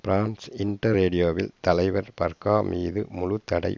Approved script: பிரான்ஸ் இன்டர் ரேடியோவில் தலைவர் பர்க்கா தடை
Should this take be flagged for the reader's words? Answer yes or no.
yes